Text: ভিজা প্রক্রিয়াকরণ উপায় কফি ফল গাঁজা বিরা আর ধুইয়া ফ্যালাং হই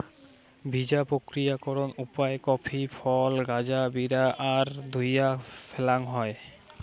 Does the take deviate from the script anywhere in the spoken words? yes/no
no